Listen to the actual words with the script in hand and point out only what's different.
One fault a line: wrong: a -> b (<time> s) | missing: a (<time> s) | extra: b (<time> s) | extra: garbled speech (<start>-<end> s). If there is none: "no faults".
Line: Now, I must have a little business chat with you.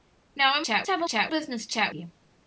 wrong: must -> chat (0.6 s)
wrong: little -> chat (1.0 s)
missing: with (1.9 s)